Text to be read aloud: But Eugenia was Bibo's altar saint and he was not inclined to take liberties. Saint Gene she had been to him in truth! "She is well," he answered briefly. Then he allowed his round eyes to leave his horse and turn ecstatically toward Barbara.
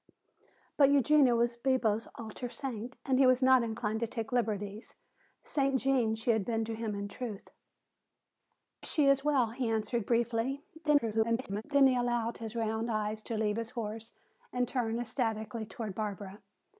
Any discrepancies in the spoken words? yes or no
yes